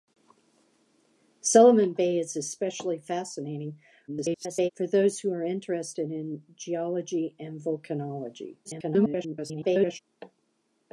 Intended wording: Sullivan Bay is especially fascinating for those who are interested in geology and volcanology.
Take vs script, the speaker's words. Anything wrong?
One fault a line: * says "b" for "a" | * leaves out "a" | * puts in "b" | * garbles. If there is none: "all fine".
* garbles
* garbles